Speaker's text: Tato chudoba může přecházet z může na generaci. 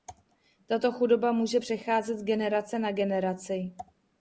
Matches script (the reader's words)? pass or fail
fail